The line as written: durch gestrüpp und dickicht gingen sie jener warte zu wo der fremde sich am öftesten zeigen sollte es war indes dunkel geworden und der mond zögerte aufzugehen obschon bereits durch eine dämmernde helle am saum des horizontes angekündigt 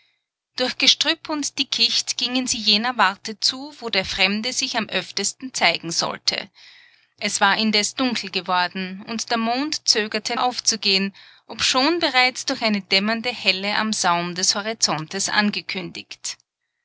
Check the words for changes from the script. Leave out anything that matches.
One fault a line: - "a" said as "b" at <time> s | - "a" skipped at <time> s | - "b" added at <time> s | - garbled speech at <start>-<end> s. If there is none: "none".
none